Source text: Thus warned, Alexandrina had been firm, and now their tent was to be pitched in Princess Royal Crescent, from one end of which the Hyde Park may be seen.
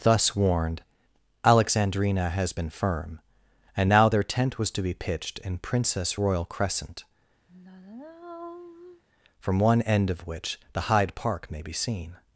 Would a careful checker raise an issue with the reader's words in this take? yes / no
yes